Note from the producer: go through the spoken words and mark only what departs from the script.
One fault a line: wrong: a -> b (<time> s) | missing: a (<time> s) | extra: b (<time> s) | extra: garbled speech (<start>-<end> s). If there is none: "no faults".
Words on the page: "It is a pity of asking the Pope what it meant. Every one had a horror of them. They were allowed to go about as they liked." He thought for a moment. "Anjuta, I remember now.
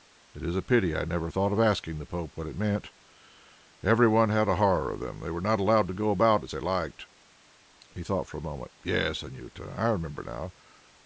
extra: I never thought (0.9 s)
extra: not (5.4 s)
extra: Yes (8.8 s)